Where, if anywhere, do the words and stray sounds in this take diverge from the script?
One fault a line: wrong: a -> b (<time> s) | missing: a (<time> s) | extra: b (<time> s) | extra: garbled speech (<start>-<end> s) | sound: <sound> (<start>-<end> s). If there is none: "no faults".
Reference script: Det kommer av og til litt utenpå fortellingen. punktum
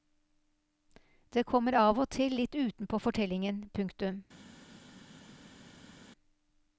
no faults